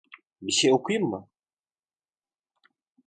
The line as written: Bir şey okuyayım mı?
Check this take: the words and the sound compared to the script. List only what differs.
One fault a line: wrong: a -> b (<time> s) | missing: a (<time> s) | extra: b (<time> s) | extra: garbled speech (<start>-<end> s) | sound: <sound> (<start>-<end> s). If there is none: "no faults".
no faults